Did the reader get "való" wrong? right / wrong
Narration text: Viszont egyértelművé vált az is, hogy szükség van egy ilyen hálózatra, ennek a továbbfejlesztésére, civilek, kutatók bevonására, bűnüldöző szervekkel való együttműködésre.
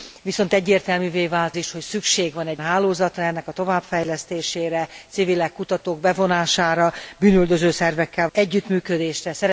wrong